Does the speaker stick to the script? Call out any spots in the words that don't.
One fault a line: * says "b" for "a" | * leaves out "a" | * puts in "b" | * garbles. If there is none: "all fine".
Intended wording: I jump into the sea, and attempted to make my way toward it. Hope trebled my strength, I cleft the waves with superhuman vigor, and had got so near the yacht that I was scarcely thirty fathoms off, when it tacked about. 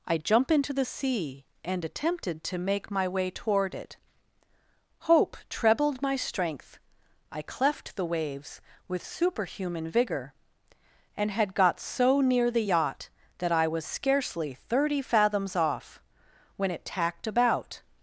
all fine